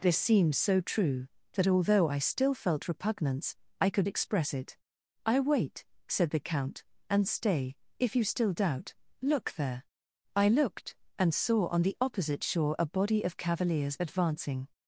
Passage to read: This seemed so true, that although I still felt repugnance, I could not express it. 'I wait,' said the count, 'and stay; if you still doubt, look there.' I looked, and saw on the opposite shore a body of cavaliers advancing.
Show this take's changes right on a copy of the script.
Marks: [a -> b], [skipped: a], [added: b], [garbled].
This seemed so true, that although I still felt repugnance, I could [skipped: not] express it. 'I wait,' said the count, 'and stay; if you still doubt, look there.' I looked, and saw on the opposite shore a body of cavaliers advancing.